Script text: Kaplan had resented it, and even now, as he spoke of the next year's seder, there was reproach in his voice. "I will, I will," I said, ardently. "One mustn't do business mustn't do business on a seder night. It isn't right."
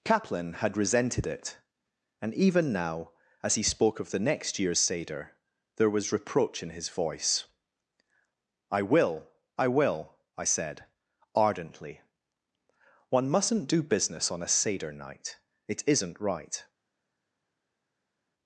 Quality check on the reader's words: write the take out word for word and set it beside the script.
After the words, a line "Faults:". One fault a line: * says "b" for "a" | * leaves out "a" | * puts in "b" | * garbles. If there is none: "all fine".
Kaplan had resented it, and even now, as he spoke of the next year's seder, there was reproach in his voice. "I will, I will," I said, ardently. "One mustn't do business on a seder night. It isn't right."
Faults:
* leaves out "mustn't do business"